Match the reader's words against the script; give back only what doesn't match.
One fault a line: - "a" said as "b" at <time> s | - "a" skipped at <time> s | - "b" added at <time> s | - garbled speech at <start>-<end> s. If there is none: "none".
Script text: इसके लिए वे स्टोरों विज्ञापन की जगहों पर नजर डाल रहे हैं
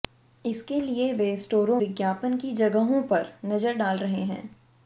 none